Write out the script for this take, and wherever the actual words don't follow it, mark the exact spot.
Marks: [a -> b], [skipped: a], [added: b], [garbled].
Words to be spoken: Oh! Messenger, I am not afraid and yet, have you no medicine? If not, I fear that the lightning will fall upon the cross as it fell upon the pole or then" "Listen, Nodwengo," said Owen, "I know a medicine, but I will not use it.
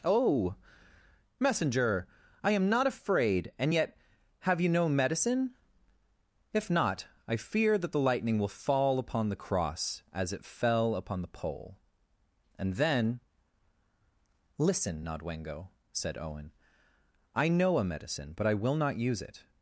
Oh! Messenger, I am not afraid and yet, have you no medicine? If not, I fear that the lightning will fall upon the cross as it fell upon the pole [or -> and] then" "Listen, Nodwengo," said Owen, "I know a medicine, but I will not use it.